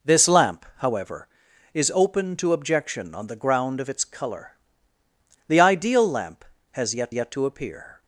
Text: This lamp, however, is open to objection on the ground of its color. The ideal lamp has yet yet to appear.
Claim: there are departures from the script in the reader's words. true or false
false